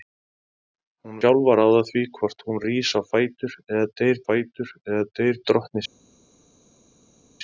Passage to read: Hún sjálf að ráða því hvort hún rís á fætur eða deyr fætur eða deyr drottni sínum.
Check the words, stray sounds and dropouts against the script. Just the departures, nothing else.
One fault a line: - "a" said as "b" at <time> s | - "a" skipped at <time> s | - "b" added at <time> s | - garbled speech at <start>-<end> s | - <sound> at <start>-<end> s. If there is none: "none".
none